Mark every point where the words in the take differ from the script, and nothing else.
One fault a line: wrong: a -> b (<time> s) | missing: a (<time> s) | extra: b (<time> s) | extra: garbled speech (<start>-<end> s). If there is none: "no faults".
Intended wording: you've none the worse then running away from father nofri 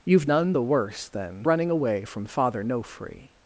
no faults